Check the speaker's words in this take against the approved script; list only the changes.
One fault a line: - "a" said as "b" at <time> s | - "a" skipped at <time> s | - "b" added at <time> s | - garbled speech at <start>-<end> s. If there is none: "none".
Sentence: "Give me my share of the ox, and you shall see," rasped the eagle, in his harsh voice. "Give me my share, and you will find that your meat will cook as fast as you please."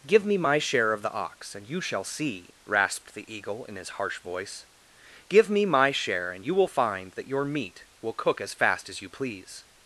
none